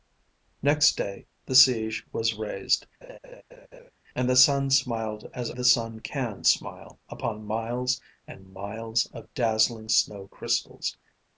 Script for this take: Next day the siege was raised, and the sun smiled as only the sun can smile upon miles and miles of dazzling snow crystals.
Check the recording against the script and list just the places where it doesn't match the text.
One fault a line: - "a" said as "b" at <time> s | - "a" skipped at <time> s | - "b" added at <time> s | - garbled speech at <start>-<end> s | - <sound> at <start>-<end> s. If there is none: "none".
- laugh at 3.0-3.9 s
- "only" skipped at 5.5 s